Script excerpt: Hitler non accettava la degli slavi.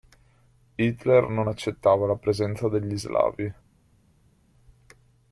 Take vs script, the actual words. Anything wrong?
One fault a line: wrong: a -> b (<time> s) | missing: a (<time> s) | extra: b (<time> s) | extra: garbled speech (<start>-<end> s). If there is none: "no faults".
extra: presenza (2.2 s)